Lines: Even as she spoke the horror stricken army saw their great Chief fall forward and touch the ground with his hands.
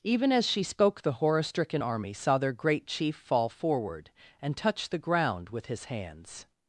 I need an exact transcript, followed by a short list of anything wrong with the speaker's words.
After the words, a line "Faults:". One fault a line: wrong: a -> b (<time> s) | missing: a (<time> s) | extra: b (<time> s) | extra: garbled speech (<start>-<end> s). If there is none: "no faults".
Even as she spoke the horror stricken army saw their great Chief fall forward and touch the ground with his hands.
Faults:
no faults